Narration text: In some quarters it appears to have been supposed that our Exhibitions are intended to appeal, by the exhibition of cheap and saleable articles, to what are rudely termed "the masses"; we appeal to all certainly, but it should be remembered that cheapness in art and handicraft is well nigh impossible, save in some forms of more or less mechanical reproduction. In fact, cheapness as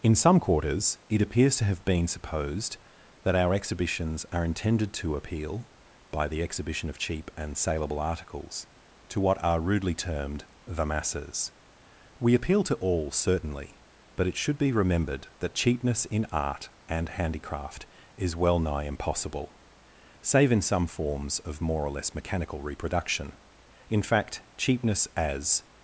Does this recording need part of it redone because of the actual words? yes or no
no